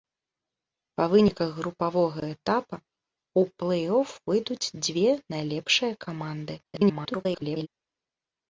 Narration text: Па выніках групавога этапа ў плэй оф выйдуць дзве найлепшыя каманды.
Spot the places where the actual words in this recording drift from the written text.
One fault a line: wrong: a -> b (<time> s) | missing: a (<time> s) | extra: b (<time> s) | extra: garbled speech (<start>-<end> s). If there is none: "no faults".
extra: garbled speech (6.6-7.7 s)